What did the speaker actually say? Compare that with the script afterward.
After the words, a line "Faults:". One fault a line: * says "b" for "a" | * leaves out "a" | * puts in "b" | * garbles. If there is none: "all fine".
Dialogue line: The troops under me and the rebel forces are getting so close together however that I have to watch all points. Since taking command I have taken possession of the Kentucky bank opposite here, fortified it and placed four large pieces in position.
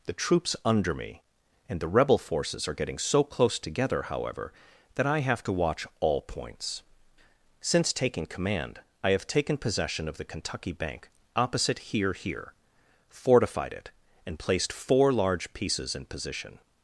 The troops under me and the rebel forces are getting so close together however that I have to watch all points. Since taking command I have taken possession of the Kentucky bank opposite here here, fortified it and placed four large pieces in position.
Faults:
* puts in "here"